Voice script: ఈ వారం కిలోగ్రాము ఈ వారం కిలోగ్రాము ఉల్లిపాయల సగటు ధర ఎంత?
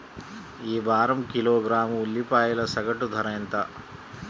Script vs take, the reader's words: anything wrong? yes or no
yes